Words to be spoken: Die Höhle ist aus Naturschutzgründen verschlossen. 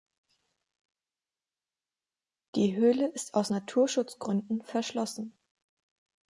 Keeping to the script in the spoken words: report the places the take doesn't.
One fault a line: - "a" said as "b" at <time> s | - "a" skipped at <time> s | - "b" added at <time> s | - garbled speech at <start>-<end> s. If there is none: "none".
none